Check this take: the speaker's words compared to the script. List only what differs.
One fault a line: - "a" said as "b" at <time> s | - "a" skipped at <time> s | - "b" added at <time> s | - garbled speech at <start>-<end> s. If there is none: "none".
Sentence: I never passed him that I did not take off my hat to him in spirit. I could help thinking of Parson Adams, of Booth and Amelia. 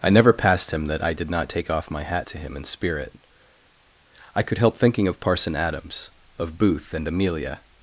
none